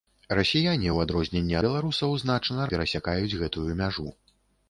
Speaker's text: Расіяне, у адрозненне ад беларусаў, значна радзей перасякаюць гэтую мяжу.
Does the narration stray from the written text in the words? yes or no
yes